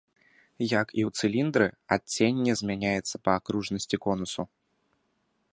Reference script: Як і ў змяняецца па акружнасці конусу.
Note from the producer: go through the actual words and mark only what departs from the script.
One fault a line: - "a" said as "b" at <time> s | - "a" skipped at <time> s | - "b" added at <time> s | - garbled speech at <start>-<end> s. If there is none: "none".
- "цыліндры адценне" added at 1.2 s